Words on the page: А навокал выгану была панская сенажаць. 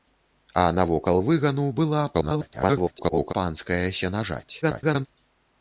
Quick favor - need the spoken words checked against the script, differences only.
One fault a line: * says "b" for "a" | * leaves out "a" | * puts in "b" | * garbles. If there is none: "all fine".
* garbles
* garbles